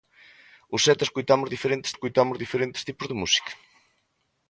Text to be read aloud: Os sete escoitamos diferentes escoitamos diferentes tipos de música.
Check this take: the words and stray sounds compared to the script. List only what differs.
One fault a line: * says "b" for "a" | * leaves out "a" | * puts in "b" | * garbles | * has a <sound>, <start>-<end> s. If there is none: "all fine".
all fine